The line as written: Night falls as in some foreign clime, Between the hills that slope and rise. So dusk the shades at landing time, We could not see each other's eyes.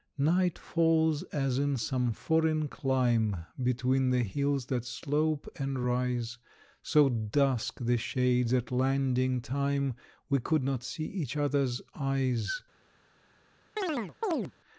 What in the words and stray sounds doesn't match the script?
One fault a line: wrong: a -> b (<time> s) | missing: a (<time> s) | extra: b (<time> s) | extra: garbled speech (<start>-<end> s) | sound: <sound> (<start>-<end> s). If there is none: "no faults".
sound: chirp (13.8-14.5 s)